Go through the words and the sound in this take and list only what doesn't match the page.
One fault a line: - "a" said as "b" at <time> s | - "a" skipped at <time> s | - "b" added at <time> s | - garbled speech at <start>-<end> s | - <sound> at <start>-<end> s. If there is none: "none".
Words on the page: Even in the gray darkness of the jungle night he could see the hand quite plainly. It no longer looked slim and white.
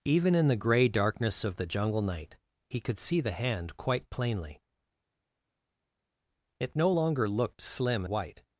- "and" skipped at 8.0 s